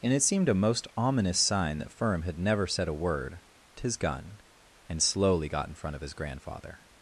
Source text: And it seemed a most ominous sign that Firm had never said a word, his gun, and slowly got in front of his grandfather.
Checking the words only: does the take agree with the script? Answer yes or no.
yes